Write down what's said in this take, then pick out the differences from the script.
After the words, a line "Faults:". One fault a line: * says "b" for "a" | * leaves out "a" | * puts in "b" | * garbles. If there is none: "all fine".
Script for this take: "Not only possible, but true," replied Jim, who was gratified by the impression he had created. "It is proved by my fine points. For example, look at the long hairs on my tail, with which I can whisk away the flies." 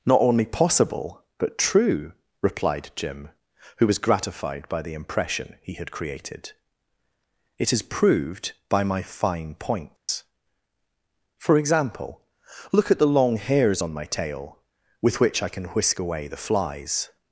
"Not only possible, but true," replied Jim, who was gratified by the impression he had created. "It is proved by my fine points. For example, look at the long hairs on my tail, with which I can whisk away the flies."
Faults:
all fine